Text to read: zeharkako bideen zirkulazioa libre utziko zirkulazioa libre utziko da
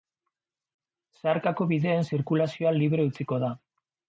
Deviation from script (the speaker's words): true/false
true